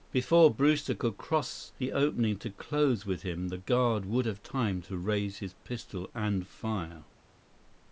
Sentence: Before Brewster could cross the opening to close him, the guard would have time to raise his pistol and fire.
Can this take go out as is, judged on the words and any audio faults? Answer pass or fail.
fail